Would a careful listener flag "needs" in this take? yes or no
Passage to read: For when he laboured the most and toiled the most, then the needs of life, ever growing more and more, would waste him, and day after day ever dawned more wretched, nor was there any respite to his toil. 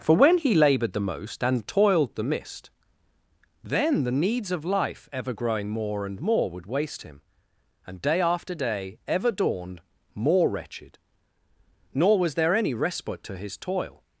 no